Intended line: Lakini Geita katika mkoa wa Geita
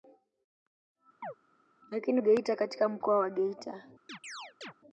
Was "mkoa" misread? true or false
false